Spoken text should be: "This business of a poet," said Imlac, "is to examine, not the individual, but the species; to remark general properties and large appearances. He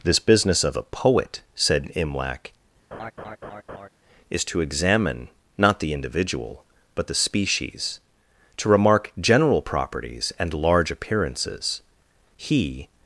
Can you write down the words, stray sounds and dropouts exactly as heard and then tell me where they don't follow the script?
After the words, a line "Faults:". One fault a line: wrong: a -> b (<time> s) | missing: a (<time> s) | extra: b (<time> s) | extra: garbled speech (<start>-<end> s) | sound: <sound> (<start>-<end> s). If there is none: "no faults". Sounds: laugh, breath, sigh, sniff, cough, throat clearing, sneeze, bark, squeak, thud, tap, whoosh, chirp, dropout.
"This business of a poet," said Imlac, "is to examine, not the individual, but the species; to remark general properties and large appearances. He
Faults:
sound: laugh (2.9-3.9 s)